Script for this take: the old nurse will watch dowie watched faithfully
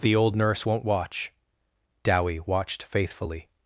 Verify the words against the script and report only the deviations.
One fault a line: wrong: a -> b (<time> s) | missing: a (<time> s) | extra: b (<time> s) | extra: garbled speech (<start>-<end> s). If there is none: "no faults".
wrong: will -> won't (0.6 s)